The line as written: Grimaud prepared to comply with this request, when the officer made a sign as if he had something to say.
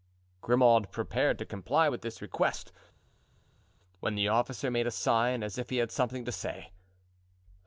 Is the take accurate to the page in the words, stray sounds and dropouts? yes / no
yes